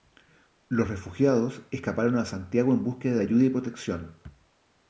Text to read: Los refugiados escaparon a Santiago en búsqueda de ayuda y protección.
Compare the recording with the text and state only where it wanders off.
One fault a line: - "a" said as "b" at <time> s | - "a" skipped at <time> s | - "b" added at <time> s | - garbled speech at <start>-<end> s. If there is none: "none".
none